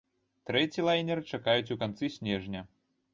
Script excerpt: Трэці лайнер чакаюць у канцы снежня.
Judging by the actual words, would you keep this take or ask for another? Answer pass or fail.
pass